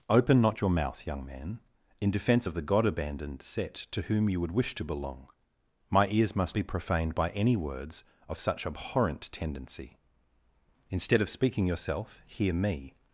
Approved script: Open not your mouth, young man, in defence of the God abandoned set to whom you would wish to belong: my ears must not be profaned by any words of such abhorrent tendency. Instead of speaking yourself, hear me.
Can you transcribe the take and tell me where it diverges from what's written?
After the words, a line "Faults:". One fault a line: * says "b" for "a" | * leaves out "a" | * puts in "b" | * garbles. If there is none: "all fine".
Open not your mouth, young man, in defence of the God abandoned set to whom you would wish to belong: my ears must be profaned by any words of such abhorrent tendency. Instead of speaking yourself, hear me.
Faults:
* leaves out "not"